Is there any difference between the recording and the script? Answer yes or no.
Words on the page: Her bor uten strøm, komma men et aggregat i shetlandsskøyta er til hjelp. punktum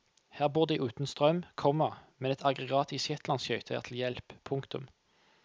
yes